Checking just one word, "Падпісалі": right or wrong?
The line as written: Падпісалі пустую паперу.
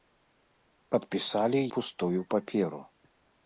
right